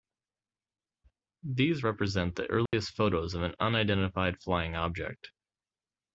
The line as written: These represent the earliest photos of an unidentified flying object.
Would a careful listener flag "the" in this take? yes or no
no